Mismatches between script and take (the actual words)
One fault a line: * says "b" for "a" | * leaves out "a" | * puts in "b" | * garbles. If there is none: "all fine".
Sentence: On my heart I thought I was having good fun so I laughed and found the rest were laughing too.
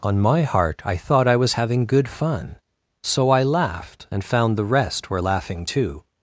all fine